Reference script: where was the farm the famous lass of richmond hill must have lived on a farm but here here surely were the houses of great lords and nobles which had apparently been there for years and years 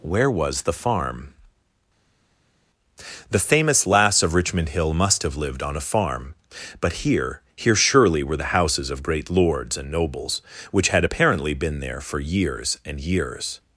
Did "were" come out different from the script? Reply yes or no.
no